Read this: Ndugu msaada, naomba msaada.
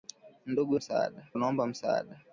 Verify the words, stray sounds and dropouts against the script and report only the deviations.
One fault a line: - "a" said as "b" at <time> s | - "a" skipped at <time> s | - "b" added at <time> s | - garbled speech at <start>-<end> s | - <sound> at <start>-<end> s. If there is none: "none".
none